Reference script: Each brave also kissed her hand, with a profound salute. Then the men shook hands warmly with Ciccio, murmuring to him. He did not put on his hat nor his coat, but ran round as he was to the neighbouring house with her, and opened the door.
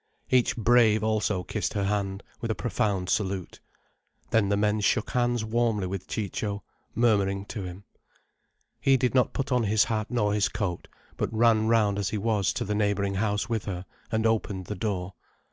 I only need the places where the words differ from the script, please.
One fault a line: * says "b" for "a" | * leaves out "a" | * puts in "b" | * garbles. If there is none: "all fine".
all fine